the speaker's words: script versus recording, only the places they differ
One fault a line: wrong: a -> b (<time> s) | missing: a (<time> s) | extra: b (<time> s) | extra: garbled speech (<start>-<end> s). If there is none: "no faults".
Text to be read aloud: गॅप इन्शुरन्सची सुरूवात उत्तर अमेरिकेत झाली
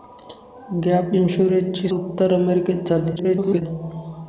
missing: सुरूवात (1.9 s)
extra: garbled speech (3.2-3.6 s)